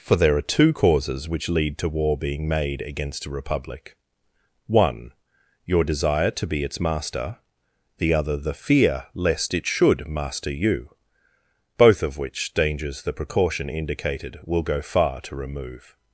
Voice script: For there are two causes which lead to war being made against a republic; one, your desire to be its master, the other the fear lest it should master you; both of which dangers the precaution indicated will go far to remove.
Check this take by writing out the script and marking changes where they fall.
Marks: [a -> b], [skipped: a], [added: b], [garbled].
For there are two causes which lead to war being made against a republic; one, your desire to be its master, the other the fear lest it should master you; both of which dangers the precaution indicated will go far to remove.